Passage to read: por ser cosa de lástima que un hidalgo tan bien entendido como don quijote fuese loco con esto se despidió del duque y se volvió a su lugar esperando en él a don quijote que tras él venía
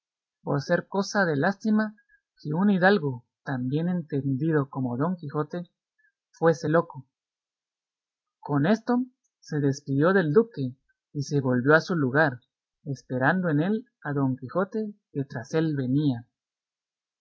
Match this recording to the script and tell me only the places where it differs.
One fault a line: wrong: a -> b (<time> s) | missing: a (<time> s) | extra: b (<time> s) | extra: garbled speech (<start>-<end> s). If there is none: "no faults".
no faults